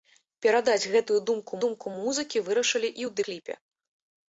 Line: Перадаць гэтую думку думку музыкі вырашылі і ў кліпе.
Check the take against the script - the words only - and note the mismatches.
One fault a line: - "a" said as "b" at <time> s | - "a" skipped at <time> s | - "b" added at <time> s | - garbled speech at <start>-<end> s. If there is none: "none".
none